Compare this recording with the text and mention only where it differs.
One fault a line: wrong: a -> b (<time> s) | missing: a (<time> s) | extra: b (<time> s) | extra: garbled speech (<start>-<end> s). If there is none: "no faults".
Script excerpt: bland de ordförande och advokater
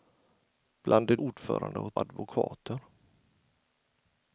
no faults